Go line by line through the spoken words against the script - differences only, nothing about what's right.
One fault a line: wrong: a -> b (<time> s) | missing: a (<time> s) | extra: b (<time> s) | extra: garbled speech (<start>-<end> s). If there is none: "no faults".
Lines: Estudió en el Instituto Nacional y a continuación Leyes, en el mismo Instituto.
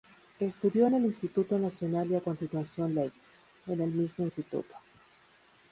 no faults